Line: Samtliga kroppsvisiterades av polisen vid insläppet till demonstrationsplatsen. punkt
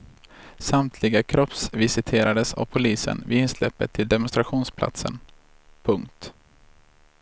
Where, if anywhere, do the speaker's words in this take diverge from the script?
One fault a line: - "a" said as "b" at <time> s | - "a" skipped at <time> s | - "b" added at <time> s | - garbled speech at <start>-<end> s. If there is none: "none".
none